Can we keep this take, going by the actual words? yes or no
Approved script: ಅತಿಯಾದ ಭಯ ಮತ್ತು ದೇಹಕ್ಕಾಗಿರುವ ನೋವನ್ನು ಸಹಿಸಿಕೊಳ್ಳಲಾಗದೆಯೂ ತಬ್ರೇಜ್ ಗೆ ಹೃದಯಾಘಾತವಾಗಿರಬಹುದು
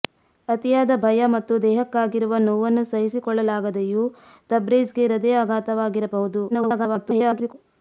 no